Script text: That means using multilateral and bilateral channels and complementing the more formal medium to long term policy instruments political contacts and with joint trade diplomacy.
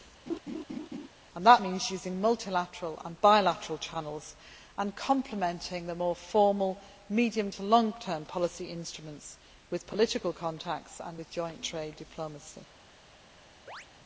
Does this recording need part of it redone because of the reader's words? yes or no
yes